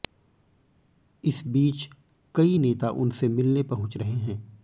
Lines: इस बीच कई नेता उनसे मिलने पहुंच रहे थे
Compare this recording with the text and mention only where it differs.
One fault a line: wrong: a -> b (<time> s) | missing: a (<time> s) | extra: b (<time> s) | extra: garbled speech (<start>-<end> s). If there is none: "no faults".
wrong: थे -> हैं (4.1 s)